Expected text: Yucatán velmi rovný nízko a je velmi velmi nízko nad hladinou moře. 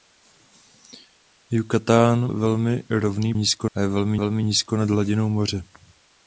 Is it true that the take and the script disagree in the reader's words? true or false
false